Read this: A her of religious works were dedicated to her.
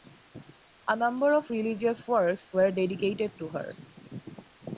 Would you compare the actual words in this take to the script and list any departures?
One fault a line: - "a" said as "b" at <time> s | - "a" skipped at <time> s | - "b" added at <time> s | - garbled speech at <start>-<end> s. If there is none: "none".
- "her" said as "number" at 0.9 s